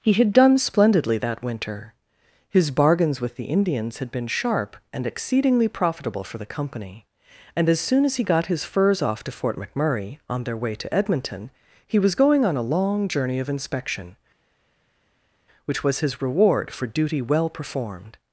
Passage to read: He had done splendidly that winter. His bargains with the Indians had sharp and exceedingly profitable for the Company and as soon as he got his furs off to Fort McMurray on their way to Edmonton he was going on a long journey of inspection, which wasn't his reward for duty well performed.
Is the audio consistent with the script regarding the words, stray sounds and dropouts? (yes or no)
no